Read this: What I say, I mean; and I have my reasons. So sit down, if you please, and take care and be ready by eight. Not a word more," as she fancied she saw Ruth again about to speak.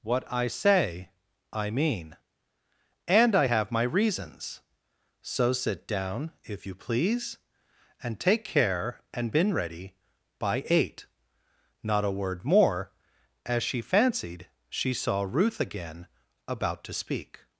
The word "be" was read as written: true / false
false